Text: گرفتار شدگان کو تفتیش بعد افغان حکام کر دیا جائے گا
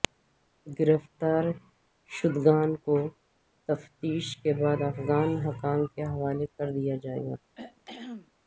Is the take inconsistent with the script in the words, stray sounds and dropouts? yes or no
yes